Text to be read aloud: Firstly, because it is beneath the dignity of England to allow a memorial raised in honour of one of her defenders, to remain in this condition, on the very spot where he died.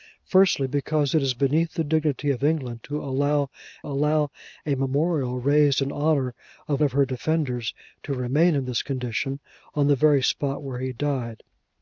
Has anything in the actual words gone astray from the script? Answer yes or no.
yes